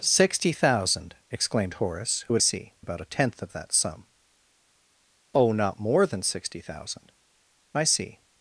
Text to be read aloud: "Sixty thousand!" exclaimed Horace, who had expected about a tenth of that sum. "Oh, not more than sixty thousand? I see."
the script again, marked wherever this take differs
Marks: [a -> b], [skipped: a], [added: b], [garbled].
"Sixty thousand!" exclaimed Horace, who had [expected -> see] about a tenth of that sum. "Oh, not more than sixty thousand? I see."